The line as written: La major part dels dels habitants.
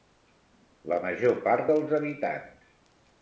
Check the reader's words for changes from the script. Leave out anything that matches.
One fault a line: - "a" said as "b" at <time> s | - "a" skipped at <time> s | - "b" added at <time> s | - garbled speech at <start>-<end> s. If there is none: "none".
- "dels" skipped at 1.9 s